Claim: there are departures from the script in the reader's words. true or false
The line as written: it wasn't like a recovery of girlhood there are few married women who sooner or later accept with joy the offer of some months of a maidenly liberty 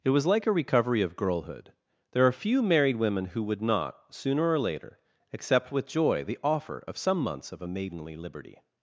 true